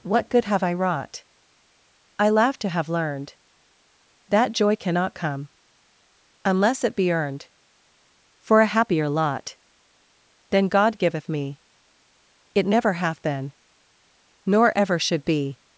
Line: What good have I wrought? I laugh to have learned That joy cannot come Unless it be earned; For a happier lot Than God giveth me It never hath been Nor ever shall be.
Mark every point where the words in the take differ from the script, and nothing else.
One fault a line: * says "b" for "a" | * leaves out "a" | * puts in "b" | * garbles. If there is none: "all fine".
* says "should" for "shall"